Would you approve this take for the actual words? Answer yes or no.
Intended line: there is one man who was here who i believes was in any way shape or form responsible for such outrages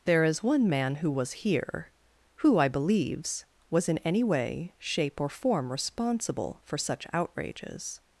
yes